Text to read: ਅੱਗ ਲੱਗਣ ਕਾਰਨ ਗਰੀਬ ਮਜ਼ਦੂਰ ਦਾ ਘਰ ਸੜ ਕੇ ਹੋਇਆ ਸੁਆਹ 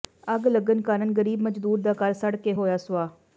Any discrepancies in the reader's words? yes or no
no